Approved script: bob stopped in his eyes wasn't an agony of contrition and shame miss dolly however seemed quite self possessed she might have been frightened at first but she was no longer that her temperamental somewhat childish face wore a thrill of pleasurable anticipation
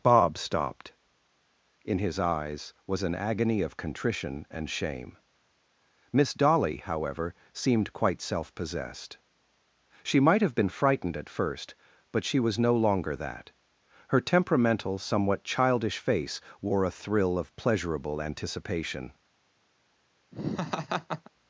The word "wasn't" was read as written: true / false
false